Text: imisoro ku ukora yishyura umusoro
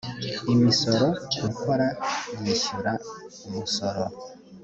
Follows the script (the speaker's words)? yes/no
yes